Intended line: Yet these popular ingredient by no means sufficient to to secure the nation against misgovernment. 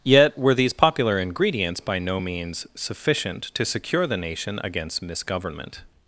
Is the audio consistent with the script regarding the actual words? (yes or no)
no